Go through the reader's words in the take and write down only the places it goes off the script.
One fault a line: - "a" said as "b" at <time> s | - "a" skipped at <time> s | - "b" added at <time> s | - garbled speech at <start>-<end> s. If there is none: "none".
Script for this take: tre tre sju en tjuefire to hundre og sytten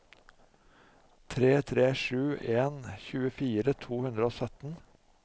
none